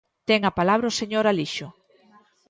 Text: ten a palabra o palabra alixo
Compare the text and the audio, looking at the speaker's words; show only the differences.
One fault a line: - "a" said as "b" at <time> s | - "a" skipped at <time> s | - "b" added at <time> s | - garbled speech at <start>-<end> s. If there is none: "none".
- "palabra" said as "señor" at 1.0 s